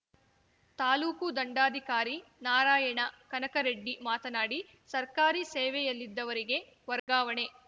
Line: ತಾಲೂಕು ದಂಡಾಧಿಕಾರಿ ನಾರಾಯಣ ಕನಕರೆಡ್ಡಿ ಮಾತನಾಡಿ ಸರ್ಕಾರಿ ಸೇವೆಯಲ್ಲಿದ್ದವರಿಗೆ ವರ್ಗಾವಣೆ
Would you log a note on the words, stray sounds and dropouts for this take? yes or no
yes